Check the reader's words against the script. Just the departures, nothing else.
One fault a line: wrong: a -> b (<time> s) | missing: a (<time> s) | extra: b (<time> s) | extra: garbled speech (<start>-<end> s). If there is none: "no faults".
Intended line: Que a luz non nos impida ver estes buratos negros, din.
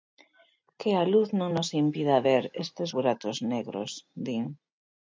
no faults